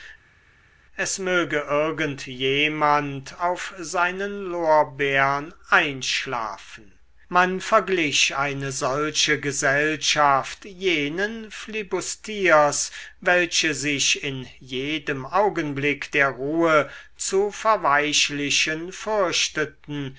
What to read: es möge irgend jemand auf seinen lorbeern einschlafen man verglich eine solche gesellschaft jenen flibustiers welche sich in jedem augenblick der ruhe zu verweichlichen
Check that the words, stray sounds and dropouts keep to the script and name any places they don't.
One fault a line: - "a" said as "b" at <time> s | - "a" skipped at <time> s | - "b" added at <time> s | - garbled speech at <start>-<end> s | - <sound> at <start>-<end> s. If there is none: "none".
none